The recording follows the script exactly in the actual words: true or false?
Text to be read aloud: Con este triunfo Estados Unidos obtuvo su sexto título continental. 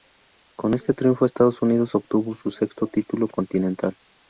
true